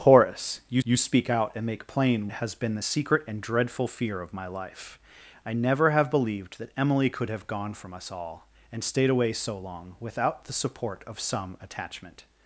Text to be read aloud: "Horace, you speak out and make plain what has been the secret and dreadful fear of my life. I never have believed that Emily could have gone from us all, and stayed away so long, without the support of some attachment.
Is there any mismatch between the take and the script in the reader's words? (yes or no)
yes